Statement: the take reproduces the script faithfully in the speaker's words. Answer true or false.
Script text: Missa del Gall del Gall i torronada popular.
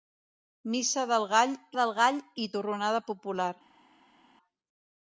true